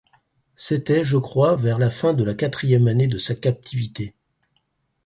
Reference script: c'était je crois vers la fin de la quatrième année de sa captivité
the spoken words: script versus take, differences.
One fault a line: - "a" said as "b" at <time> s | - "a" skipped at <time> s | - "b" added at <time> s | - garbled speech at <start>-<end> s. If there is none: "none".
none